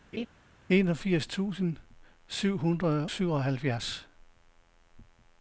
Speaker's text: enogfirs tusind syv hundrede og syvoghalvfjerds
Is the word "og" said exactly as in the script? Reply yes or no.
no